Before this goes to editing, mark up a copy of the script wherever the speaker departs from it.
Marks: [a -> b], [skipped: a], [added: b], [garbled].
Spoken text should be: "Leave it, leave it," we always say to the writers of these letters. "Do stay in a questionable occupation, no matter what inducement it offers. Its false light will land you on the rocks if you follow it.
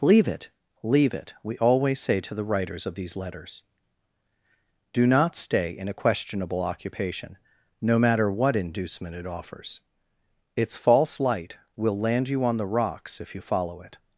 "Leave it, leave it," we always say to the writers of these letters. "Do [added: not] stay in a questionable occupation, no matter what inducement it offers. Its false light will land you on the rocks if you follow it.